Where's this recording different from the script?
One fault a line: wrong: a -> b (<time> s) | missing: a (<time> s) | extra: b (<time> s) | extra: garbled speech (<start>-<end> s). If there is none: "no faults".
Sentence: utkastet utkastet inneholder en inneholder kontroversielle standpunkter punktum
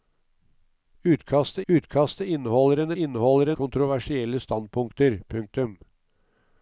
no faults